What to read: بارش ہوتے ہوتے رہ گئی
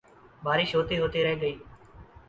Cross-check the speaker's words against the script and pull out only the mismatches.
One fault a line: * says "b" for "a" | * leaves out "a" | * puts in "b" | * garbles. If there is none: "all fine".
all fine